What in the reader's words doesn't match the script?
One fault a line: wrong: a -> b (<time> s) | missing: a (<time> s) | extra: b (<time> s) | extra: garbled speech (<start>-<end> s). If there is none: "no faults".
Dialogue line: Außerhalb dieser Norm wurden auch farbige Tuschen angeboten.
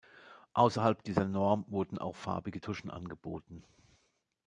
no faults